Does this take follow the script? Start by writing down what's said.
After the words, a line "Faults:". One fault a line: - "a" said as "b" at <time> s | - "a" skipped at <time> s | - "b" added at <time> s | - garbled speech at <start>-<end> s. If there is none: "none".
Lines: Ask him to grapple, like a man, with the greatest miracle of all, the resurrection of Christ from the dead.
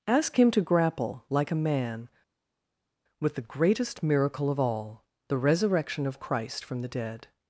Ask him to grapple, like a man, with the greatest miracle of all, the resurrection of Christ from the dead.
Faults:
none